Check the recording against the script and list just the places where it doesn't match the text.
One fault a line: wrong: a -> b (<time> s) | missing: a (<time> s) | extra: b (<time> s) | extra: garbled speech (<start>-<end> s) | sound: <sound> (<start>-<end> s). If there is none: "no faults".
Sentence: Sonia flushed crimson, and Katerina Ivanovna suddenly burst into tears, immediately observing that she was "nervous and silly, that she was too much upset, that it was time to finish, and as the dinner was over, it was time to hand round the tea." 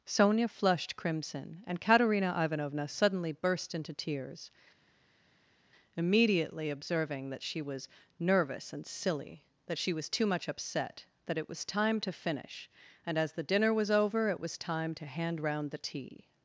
no faults